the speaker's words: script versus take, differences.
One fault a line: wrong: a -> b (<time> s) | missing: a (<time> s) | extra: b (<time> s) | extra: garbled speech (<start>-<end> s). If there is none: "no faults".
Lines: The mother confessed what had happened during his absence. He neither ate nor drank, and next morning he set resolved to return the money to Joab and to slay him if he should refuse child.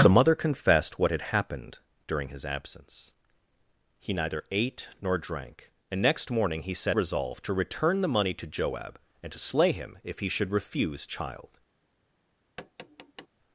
no faults